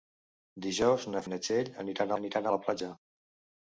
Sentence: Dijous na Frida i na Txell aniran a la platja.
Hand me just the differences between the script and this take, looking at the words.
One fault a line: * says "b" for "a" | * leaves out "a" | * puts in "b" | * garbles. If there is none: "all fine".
* leaves out "Frida"
* puts in "aniran"